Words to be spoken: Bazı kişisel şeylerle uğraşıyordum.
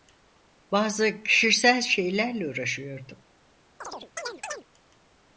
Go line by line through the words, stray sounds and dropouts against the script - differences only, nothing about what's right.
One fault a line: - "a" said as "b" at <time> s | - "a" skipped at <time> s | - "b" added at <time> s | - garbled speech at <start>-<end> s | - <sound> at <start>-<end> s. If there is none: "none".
- chirp at 3.8-4.6 s